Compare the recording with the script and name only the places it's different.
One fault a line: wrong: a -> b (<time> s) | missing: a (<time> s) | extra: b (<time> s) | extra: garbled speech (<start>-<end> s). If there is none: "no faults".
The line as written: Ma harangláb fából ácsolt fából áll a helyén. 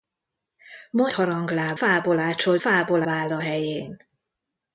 no faults